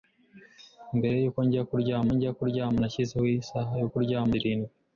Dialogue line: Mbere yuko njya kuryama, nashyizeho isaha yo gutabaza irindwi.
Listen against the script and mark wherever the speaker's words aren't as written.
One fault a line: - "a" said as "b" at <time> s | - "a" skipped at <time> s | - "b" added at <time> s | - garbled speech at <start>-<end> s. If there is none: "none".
- "njya kuryama" added at 2.1 s
- "gutabaza" said as "kuryama" at 3.9 s